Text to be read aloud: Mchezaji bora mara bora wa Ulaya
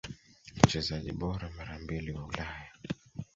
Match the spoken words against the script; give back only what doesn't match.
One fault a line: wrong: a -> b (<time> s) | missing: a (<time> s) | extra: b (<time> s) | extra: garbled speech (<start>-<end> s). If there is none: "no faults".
wrong: bora -> mbili (1.8 s)